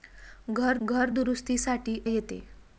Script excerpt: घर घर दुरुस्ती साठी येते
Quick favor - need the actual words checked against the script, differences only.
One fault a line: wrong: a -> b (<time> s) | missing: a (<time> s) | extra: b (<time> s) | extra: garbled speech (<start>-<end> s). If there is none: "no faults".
no faults